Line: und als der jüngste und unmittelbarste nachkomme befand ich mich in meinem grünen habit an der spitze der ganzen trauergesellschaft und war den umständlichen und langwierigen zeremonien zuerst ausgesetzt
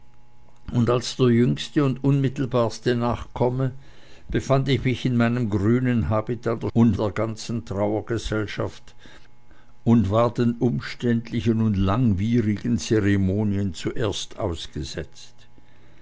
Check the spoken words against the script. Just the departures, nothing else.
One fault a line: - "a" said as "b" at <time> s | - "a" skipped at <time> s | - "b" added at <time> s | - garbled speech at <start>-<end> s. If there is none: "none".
- "spitze" said as "und" at 6.7 s